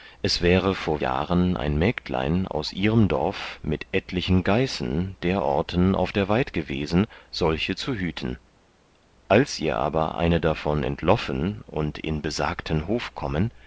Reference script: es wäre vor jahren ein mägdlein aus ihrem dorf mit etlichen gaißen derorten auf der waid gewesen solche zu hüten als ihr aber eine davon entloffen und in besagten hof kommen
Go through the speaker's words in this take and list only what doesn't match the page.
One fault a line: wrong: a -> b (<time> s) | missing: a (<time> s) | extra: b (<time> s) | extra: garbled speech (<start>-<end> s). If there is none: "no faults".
no faults